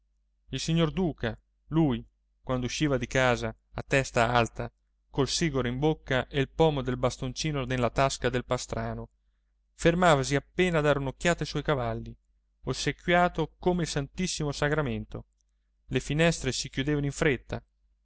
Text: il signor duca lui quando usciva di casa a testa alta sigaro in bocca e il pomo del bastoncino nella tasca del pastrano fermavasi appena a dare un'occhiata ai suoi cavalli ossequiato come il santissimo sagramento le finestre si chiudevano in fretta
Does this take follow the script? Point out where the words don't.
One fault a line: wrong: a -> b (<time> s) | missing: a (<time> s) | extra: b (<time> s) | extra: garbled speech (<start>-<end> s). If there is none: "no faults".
extra: col (5.1 s)